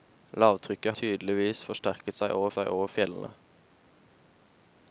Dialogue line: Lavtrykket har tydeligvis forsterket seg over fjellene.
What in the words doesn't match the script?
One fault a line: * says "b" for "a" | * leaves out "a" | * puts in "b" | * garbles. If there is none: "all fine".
* leaves out "har"
* puts in "seg over"